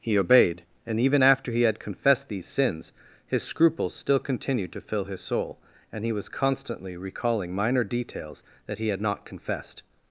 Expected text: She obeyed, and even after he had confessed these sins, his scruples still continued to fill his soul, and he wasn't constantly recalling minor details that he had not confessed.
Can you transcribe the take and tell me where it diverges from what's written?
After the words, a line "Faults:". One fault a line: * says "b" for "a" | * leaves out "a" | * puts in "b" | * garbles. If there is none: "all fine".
He obeyed, and even after he had confessed these sins, his scruples still continued to fill his soul, and he was constantly recalling minor details that he had not confessed.
Faults:
* says "He" for "She"
* says "was" for "wasn't"